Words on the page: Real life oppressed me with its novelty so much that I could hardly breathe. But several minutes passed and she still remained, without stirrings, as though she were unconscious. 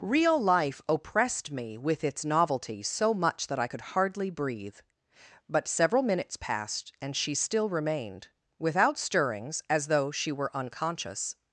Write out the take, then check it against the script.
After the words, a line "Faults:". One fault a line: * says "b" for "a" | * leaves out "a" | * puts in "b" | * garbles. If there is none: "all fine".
Real life oppressed me with its novelty so much that I could hardly breathe. But several minutes passed and she still remained, without stirrings, as though she were unconscious.
Faults:
all fine